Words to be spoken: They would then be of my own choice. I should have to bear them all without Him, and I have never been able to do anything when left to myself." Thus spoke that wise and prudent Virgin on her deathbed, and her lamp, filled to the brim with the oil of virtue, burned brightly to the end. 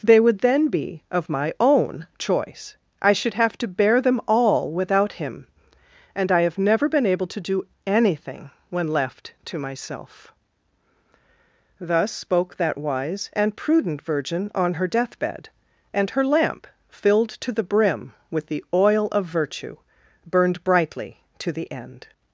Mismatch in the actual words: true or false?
false